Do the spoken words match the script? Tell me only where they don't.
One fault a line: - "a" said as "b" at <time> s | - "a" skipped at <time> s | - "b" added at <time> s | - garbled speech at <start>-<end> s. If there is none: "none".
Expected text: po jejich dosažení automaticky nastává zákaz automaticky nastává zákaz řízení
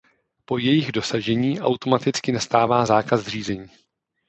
- "automaticky nastává zákaz" skipped at 3.3 s